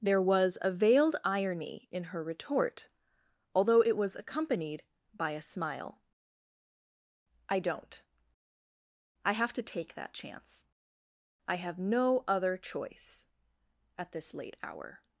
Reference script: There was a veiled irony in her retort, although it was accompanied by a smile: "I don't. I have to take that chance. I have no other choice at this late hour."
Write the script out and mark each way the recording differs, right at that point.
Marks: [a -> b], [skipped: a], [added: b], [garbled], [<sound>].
There was a veiled irony in her retort, although it was accompanied by a smile: "I don't. I have to take that chance. I have no other choice at this late hour."